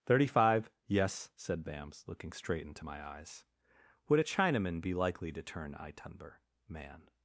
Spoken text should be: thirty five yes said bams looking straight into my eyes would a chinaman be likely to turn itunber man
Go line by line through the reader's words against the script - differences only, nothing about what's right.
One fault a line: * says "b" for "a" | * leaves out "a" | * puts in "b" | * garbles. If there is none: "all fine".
all fine